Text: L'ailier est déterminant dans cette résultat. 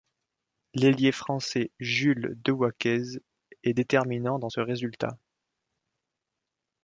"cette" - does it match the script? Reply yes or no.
no